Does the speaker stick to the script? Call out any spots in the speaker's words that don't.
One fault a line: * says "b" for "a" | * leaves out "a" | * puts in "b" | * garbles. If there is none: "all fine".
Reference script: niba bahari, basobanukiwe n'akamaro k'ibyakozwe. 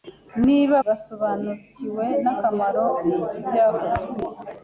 * leaves out "bahari"